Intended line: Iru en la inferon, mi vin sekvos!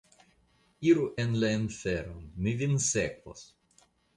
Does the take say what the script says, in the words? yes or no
yes